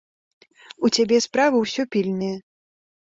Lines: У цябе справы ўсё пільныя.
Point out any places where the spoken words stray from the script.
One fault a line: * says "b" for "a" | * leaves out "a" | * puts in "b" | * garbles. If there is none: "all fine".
all fine